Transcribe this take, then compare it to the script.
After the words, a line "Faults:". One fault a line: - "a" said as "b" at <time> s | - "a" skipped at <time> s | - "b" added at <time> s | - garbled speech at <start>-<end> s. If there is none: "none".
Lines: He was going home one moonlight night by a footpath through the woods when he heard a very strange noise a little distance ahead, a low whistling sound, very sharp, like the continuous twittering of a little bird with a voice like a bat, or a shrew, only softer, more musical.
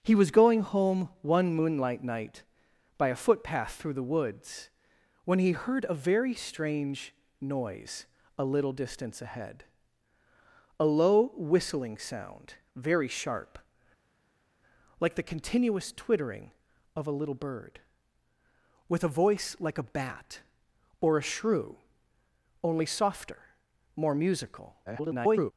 He was going home one moonlight night by a footpath through the woods when he heard a very strange noise a little distance ahead, a low whistling sound, very sharp, like the continuous twittering of a little bird with a voice like a bat, or a shrew, only softer, more musical. [garbled]
Faults:
- garbled speech at 24.9-25.5 s